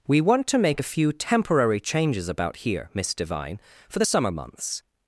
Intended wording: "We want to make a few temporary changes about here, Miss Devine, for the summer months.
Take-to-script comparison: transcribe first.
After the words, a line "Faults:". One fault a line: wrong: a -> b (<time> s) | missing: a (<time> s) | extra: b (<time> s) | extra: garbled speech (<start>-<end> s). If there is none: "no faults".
"We want to make a few temporary changes about here, Miss Devine, for the summer months.
Faults:
no faults